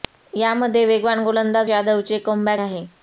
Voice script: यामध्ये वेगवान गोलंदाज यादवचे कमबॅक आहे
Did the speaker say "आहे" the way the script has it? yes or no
yes